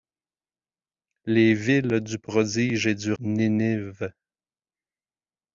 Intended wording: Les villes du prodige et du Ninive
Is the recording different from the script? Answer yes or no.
no